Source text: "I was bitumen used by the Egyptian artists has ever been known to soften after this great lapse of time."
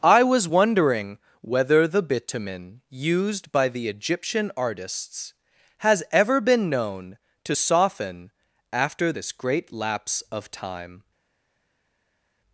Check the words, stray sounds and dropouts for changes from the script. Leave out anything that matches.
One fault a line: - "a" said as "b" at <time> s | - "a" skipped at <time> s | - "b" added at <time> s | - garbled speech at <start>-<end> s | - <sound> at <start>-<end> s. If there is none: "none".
- "wondering whether the" added at 0.5 s